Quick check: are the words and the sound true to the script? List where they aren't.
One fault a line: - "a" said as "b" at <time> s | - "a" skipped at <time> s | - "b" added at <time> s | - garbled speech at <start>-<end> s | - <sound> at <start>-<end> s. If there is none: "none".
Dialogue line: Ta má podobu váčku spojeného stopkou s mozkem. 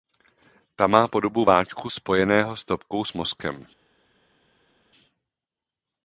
none